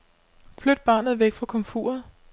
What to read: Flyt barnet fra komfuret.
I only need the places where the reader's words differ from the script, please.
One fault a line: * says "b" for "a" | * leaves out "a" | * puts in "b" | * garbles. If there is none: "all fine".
* puts in "væk"